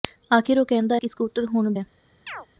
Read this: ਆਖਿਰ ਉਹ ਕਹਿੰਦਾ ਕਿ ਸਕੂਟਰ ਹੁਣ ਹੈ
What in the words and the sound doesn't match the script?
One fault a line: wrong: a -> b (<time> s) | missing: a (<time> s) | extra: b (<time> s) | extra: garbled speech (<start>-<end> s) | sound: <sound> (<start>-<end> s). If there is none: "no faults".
sound: chirp (2.3-2.5 s)